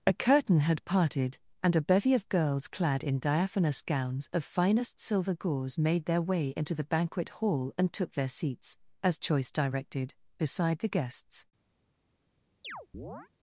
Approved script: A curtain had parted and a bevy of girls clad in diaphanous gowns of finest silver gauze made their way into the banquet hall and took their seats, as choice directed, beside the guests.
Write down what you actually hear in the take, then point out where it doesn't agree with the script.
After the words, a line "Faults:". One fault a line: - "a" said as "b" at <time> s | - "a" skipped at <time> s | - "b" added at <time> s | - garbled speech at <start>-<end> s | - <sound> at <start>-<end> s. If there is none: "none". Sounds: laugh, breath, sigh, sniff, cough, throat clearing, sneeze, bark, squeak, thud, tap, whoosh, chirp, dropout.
A curtain had parted and a bevy of girls clad in diaphanous gowns of finest silver gauze made their way into the banquet hall and took their seats, as choice directed, beside the guests.
Faults:
- chirp at 12.6-13.3 s